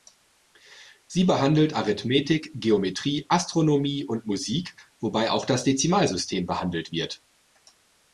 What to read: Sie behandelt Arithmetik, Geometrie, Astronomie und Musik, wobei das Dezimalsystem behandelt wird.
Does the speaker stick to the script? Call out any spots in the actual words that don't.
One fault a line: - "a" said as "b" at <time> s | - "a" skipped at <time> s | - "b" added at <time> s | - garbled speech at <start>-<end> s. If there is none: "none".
- "auch" added at 5.3 s